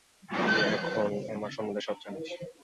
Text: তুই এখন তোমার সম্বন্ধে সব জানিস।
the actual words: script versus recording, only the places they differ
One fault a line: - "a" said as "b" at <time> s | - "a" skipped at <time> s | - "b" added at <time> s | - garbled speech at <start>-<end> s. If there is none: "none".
- "তোমার" said as "আমার" at 1.4 s